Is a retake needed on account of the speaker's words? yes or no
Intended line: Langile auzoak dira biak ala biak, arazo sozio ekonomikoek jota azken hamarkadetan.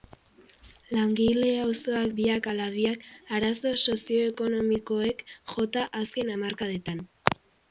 yes